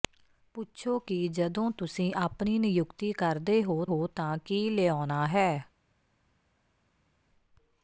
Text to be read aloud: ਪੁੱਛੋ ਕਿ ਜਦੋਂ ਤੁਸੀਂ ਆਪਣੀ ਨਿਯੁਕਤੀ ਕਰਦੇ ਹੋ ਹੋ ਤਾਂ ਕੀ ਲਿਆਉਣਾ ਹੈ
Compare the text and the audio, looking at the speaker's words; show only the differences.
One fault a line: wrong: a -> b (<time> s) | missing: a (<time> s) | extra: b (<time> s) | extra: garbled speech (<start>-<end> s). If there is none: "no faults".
no faults